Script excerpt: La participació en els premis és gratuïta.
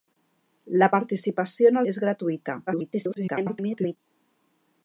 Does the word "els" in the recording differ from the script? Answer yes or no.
yes